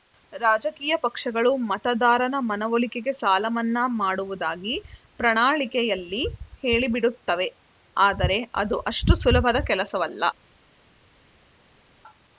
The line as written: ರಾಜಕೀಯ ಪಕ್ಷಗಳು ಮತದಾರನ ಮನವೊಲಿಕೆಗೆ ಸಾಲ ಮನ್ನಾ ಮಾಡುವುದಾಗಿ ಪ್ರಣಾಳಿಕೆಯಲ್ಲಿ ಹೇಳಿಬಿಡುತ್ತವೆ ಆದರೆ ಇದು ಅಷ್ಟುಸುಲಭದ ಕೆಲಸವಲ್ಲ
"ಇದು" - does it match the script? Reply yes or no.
no